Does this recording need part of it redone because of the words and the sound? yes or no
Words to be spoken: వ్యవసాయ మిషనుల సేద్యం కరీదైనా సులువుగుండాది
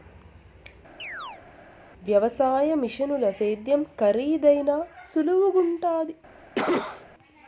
yes